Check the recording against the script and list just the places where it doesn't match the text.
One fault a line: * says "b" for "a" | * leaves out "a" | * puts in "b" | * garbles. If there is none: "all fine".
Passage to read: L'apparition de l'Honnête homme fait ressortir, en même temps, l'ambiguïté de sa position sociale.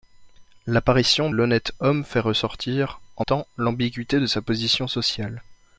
* leaves out "de"
* leaves out "même"